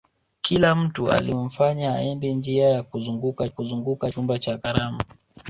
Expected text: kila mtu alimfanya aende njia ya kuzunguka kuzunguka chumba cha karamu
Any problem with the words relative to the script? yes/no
no